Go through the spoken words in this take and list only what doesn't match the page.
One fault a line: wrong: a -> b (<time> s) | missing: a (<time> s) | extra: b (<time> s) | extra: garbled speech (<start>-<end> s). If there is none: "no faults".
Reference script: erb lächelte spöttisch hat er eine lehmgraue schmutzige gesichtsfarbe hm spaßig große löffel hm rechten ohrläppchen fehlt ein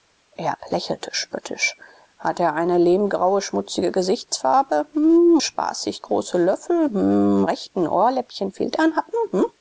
no faults